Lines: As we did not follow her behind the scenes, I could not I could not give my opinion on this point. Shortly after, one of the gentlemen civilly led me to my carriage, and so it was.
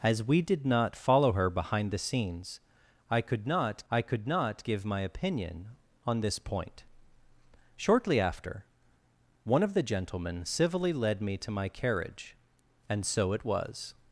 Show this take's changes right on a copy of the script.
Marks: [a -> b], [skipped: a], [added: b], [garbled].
As we did not follow her behind the scenes, I could not I could not give my opinion on this point. Shortly after, one of the gentlemen civilly led me to my carriage, and so it was.